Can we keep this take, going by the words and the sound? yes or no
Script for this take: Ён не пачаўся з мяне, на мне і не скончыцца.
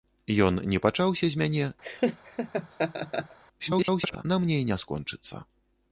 no